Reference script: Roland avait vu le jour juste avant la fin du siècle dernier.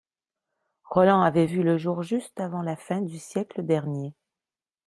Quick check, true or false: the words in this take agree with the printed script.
true